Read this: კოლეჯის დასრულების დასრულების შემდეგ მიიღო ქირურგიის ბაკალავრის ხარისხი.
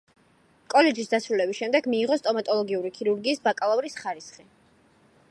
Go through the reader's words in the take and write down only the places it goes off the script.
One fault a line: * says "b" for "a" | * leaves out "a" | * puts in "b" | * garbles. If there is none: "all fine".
* leaves out "დასრულების"
* puts in "სტომატოლოგიური"